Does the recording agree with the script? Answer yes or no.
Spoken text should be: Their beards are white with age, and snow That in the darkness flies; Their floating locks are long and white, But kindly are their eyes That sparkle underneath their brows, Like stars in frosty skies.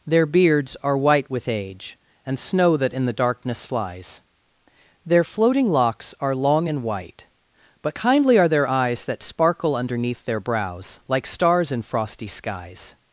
yes